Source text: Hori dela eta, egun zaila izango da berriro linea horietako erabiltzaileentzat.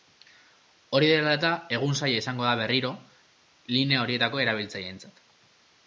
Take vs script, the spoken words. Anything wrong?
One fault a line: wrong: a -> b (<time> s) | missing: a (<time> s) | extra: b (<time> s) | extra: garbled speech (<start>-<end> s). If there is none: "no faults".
no faults